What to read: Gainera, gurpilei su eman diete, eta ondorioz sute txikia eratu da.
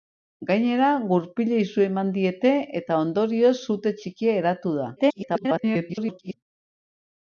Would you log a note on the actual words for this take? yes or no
yes